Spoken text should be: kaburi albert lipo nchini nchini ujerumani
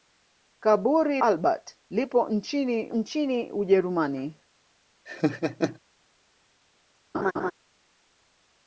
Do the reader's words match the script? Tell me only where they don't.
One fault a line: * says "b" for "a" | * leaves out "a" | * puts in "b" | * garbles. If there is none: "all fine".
all fine